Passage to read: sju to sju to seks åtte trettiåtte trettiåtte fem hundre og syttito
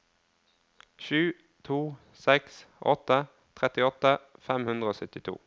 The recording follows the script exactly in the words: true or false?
false